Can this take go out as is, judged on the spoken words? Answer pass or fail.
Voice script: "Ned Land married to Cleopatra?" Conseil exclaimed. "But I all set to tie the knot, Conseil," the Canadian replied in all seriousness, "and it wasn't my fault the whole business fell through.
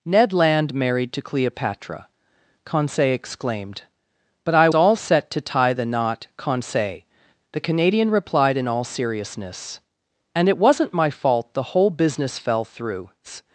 pass